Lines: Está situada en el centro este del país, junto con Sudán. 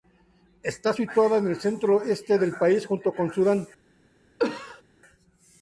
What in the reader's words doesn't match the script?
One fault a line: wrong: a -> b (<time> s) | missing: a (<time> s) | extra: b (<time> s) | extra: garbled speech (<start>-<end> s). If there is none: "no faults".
no faults